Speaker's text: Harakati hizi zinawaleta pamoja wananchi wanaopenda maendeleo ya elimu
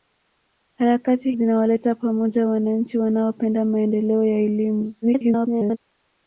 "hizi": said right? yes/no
no